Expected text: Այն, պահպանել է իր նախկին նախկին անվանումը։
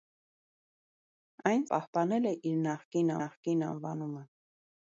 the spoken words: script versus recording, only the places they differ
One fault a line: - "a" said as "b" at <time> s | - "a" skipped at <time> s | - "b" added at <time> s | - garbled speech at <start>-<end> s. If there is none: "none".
none